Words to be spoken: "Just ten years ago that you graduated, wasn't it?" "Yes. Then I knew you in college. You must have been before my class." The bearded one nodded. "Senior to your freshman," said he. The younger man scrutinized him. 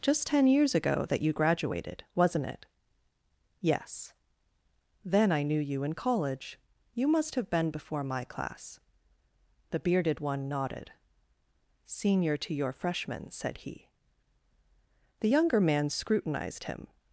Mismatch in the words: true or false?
false